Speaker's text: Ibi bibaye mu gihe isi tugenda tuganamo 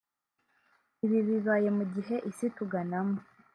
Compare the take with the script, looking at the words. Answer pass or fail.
fail